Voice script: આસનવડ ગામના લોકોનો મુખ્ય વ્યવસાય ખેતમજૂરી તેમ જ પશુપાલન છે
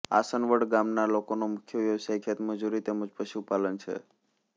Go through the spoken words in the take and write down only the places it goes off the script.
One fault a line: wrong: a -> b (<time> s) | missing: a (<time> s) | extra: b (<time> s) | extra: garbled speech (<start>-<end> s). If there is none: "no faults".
no faults